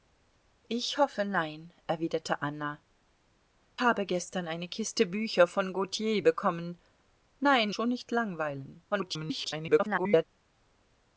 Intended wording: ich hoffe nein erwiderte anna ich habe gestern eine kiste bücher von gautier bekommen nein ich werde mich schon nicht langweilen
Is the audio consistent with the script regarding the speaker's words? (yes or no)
no